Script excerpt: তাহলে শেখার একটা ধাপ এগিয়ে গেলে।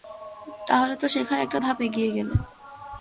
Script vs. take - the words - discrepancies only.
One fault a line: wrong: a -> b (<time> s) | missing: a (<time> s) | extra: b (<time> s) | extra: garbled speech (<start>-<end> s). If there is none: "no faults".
extra: তো (0.9 s)